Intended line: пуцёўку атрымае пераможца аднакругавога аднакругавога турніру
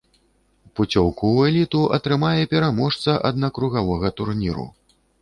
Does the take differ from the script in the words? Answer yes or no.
yes